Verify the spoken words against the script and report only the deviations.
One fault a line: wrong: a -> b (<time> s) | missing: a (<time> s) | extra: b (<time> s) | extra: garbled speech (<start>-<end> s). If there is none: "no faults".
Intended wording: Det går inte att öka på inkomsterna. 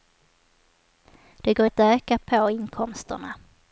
missing: inte (1.6 s)